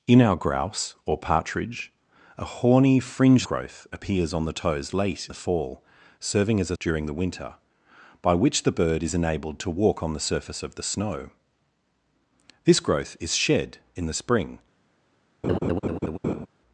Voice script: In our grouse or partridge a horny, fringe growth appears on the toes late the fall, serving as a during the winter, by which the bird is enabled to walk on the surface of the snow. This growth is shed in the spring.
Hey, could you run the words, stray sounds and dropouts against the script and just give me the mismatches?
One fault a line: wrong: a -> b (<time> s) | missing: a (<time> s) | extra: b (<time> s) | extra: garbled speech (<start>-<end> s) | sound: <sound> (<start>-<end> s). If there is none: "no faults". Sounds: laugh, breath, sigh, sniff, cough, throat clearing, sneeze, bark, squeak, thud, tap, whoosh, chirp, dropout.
sound: laugh (15.4-16.5 s)